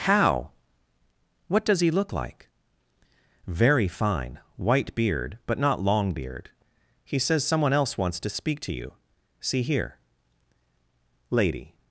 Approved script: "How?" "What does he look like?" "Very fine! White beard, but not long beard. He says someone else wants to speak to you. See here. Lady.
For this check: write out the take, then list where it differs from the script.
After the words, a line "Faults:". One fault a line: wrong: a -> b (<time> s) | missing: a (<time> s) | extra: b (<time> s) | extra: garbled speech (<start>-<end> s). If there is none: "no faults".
"How?" "What does he look like?" "Very fine! White beard, but not long beard. He says someone else wants to speak to you. See here. Lady.
Faults:
no faults